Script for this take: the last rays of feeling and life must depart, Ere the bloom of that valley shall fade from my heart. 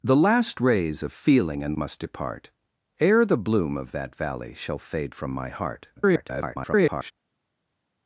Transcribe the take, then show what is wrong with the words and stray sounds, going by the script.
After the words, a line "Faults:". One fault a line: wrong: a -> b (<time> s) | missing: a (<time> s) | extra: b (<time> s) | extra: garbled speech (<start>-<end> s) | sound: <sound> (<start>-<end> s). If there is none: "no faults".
the last rays of feeling and must depart, Ere the bloom of that valley shall fade from my heart. [garbled]
Faults:
missing: life (1.8 s)
extra: garbled speech (6.0-7.1 s)